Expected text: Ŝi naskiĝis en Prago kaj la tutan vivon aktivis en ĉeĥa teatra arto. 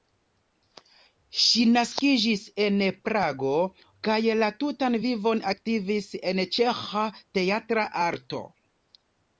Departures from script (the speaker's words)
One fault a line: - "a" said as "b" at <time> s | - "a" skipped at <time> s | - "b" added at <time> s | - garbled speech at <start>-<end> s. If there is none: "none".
none